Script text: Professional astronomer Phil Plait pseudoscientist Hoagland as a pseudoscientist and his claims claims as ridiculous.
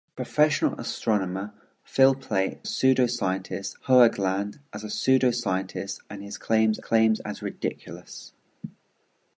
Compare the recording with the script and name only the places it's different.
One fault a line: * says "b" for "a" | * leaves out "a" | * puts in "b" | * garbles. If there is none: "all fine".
all fine